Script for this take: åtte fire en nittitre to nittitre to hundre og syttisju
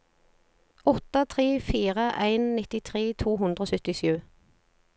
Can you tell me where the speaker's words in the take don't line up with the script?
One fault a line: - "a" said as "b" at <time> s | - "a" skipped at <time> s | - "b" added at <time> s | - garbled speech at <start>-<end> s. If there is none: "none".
- "tre" added at 1.3 s
- "nittitre to" skipped at 3.4 s